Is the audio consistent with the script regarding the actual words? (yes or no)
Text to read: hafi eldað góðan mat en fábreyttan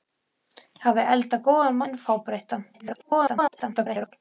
no